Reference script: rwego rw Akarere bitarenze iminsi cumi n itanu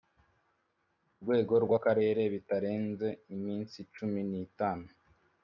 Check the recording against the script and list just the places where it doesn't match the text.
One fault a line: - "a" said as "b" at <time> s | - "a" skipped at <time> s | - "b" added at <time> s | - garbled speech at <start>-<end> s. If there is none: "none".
none